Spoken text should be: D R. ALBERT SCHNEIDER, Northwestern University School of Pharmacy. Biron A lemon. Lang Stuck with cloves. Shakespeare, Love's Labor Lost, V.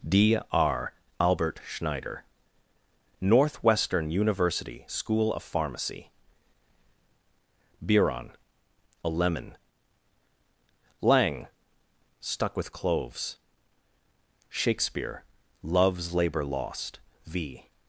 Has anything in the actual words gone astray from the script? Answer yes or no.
no